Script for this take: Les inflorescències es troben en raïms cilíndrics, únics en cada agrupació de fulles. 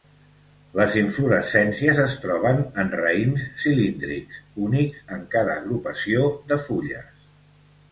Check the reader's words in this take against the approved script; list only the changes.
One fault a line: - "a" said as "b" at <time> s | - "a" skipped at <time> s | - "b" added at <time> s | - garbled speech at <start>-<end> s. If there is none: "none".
none